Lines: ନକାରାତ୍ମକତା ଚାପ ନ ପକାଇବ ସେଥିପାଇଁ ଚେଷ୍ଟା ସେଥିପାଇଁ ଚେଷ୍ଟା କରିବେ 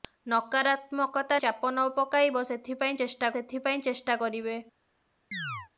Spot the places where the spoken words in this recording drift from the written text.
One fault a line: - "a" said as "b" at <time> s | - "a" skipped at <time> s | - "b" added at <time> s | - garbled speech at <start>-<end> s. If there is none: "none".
none